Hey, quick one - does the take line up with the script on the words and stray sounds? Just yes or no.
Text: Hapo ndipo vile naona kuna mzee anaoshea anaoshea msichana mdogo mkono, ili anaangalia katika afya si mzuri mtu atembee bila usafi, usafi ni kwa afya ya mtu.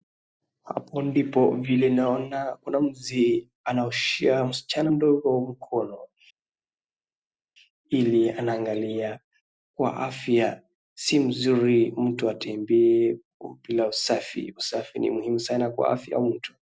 no